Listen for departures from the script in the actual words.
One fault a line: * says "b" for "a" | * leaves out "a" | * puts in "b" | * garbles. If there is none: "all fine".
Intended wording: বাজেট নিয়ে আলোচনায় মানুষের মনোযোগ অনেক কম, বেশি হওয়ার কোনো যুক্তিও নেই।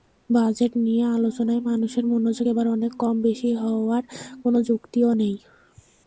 * puts in "এবার"